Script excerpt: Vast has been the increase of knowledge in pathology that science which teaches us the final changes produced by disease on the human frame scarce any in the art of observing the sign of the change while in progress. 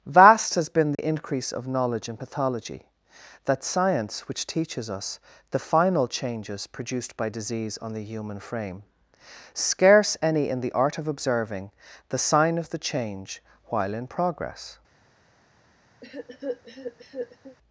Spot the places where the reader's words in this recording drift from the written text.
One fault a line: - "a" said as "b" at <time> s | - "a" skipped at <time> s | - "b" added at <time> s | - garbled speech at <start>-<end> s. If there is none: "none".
none